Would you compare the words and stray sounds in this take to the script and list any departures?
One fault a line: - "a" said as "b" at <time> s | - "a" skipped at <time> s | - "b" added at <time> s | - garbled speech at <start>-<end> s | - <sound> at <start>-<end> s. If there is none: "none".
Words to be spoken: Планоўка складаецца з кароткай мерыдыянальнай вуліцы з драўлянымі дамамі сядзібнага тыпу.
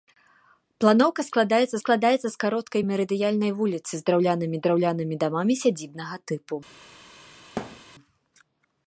- "складаецца" added at 1.8 s
- "драўлянымі" added at 4.7 s
- thud at 7.6-7.8 s